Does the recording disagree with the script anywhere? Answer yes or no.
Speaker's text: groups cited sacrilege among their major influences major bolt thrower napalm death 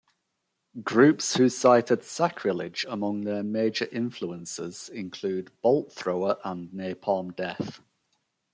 yes